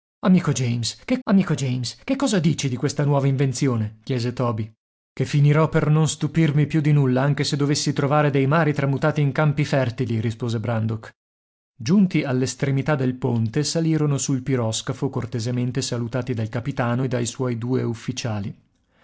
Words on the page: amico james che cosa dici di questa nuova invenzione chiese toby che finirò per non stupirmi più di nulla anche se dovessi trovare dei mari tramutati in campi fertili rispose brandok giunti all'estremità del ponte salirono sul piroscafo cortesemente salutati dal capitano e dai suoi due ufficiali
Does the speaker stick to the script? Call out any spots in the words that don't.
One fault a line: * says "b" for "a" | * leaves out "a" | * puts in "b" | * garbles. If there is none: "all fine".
* puts in "amico james che"